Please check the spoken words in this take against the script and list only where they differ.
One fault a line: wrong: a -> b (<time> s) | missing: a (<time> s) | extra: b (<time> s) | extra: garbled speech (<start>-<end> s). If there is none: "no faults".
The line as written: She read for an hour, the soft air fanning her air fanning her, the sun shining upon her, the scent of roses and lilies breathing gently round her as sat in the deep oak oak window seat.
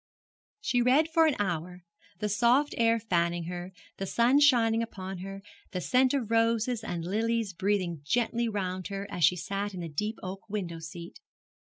missing: air fanning her (3.7 s)
extra: she (9.2 s)
missing: oak (10.5 s)